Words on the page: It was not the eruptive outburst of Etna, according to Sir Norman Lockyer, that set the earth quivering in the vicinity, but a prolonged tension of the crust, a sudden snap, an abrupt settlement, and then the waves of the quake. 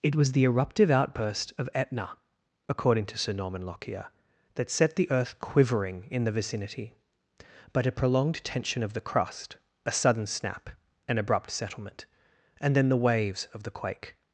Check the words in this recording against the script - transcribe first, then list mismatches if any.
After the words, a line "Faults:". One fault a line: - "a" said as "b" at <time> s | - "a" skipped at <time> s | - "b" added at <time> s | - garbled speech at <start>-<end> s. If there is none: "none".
It was the eruptive outburst of Etna, according to Sir Norman Lockyer, that set the earth quivering in the vicinity, but a prolonged tension of the crust, a sudden snap, an abrupt settlement, and then the waves of the quake.
Faults:
- "not" skipped at 0.3 s